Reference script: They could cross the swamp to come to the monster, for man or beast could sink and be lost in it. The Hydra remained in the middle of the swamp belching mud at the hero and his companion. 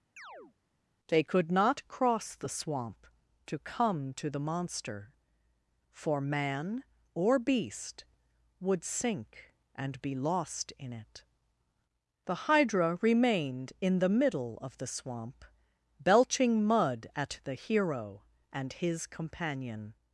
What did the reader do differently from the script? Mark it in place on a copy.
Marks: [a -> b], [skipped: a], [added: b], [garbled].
They could [added: not] cross the swamp to come to the monster, for man or beast [could -> would] sink and be lost in it. The Hydra remained in the middle of the swamp belching mud at the hero and his companion.